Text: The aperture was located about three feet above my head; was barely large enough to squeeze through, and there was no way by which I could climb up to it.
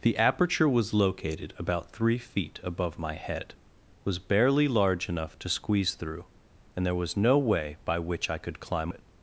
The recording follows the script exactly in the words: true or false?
false